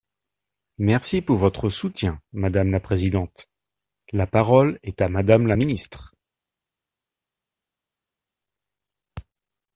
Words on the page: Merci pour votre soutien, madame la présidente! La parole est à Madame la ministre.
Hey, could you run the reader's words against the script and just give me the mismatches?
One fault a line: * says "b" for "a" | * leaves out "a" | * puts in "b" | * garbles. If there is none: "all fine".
all fine